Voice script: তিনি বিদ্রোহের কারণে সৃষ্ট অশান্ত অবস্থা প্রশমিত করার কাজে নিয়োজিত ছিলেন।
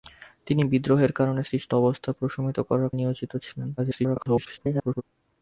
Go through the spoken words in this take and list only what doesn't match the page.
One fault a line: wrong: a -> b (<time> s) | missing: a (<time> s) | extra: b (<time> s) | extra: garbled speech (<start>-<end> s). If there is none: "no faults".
missing: অশান্ত (1.7 s)
missing: কাজে (2.9 s)
extra: garbled speech (3.8-5.0 s)